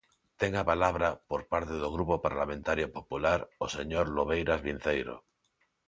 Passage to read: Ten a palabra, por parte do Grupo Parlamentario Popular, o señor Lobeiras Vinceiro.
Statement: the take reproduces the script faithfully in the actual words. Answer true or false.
true